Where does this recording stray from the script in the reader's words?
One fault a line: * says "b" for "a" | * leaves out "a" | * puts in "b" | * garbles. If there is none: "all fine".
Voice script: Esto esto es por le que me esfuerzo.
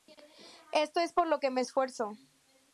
* leaves out "esto"
* says "lo" for "le"